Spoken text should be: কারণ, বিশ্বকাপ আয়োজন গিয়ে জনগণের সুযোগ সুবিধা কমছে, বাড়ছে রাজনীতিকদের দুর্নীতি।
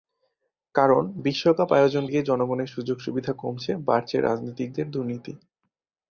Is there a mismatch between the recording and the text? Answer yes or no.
no